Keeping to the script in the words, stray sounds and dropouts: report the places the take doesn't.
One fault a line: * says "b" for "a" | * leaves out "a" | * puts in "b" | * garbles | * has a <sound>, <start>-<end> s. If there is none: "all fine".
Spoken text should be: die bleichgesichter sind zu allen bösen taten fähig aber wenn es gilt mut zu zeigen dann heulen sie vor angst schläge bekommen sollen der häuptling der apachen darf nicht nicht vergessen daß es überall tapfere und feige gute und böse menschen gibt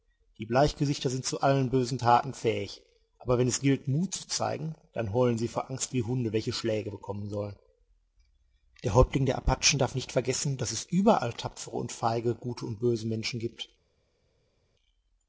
* puts in "wie hunde welche"
* leaves out "nicht"